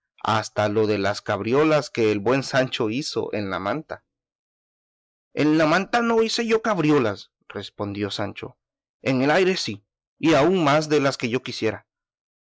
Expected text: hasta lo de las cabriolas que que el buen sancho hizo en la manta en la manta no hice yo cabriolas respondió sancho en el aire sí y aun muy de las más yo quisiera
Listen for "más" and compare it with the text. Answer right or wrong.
wrong